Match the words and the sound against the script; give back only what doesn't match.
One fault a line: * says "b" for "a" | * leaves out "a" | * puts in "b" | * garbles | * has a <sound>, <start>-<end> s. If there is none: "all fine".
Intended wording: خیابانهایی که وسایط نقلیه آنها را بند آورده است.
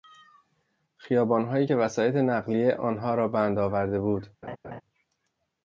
* says "بود" for "است"
* has a laugh, 4.4-4.8 s